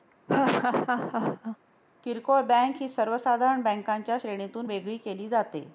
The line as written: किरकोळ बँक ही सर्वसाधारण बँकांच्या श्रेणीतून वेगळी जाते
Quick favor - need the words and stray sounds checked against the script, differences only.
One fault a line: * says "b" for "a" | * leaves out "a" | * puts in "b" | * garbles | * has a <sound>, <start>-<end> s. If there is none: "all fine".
* has a laugh, 0.3-1.6 s
* puts in "केली"